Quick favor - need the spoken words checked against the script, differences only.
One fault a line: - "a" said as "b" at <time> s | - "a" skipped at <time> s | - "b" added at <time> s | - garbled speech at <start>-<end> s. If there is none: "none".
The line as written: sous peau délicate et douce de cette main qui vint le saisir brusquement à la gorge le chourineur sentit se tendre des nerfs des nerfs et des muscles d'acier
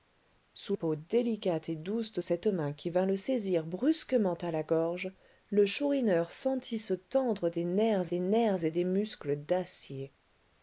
none